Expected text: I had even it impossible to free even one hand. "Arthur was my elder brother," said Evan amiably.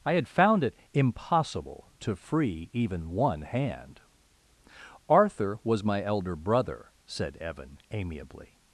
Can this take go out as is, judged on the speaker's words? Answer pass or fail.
fail